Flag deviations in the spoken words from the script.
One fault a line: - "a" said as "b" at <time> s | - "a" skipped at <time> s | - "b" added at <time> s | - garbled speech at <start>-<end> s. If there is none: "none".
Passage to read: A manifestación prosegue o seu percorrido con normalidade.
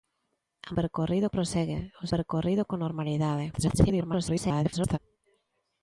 - "manifestación" said as "percorrido" at 0.8 s
- "seu" skipped at 2.0 s
- garbled speech at 3.5-5.0 s